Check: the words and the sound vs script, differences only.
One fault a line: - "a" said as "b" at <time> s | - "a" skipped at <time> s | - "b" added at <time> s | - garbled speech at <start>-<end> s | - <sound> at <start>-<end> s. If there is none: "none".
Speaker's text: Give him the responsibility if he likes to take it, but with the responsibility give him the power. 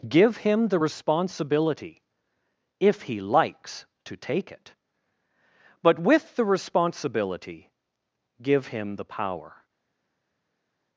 none